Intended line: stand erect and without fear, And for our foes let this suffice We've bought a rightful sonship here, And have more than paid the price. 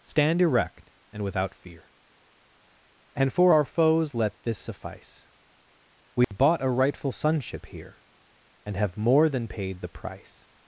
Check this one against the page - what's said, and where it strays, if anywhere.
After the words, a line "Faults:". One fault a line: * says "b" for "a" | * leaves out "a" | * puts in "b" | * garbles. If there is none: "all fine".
stand erect and without fear, And for our foes let this suffice We've bought a rightful sonship here, And have more than paid the price.
Faults:
all fine